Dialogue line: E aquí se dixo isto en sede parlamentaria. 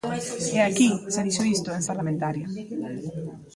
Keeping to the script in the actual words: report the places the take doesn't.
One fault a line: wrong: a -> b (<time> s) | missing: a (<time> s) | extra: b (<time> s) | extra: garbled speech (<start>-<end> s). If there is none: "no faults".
missing: sede (1.8 s)